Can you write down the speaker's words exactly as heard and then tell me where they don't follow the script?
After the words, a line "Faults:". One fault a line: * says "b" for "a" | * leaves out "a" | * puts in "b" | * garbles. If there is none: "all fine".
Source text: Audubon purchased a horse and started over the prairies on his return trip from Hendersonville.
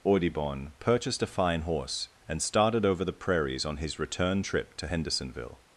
Audubon purchased a fine horse and started over the prairies on his return trip to Hendersonville.
Faults:
* puts in "fine"
* says "to" for "from"